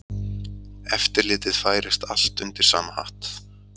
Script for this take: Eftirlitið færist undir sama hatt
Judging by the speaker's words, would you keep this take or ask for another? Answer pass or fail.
fail